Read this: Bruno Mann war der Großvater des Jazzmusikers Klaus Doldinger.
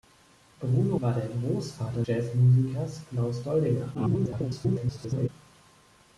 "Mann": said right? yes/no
no